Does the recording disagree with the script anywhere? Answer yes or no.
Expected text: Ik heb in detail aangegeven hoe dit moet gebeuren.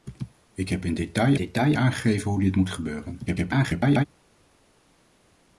yes